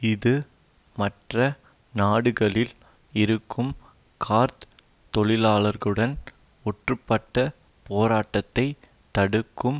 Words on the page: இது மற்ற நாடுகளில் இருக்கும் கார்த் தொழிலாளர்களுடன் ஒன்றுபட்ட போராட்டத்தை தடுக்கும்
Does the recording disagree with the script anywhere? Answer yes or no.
no